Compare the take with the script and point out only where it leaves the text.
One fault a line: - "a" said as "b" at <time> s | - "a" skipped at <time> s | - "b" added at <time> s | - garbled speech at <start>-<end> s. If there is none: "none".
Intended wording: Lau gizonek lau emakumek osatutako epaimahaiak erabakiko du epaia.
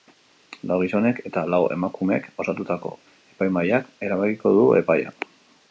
- "eta" added at 1.3 s